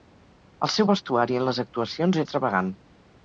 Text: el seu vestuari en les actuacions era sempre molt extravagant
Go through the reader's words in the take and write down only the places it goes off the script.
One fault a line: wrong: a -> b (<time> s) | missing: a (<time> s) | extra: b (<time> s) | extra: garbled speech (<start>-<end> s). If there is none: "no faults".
missing: era sempre molt (2.2 s)